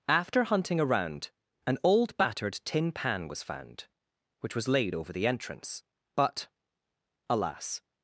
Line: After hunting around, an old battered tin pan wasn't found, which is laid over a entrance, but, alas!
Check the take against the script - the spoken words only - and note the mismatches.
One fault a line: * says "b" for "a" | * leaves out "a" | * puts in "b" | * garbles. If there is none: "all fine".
* says "was" for "wasn't"
* says "was" for "is"
* says "the" for "a"